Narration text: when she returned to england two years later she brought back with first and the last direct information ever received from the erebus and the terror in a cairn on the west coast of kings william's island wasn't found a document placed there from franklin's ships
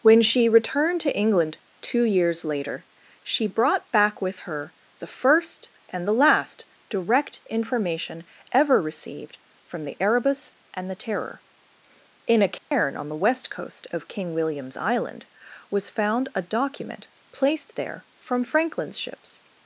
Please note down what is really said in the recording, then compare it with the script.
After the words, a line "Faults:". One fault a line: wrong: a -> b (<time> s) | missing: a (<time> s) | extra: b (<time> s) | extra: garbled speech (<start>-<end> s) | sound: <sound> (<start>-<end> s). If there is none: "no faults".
when she returned to england two years later she brought back with her the first and the last direct information ever received from the erebus and the terror in a cairn on the west coast of king william's island was found a document placed there from franklin's ships
Faults:
extra: her the (4.4 s)
sound: dropout (12.6-12.7 s)
wrong: kings -> king (14.1 s)
wrong: wasn't -> was (15.7 s)